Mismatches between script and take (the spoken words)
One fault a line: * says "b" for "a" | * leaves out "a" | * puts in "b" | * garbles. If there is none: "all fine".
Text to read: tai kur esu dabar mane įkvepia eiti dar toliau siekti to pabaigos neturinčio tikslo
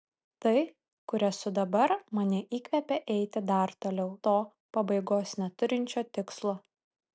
* leaves out "siekti"